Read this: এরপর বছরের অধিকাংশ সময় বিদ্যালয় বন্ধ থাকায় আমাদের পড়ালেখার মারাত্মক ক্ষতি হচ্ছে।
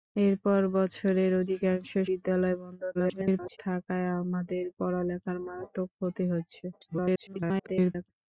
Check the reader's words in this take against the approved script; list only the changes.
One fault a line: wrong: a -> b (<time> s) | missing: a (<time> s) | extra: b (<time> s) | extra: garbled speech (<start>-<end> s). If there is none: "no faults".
missing: সময় (1.9 s)
extra: garbled speech (2.9-3.6 s)
extra: garbled speech (6.7-8.1 s)